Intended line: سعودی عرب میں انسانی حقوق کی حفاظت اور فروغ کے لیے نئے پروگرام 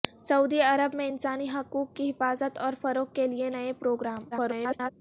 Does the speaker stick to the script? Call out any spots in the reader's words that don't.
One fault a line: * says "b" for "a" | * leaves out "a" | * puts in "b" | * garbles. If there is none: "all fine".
* garbles